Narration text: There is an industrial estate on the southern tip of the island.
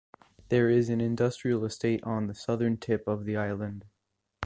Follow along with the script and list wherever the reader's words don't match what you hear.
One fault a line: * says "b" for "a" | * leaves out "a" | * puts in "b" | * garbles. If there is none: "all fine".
all fine